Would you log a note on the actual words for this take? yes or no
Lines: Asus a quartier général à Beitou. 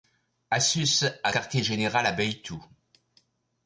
no